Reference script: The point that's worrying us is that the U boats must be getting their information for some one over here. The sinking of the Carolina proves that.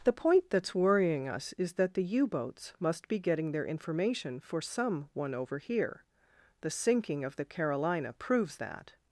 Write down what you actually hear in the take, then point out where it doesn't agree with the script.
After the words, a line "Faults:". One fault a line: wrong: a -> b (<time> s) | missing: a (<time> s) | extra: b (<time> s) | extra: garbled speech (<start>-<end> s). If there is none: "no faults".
The point that's worrying us is that the U boats must be getting their information for some one over here. The sinking of the Carolina proves that.
Faults:
no faults